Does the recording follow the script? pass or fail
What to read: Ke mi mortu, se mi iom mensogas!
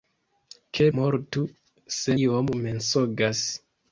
fail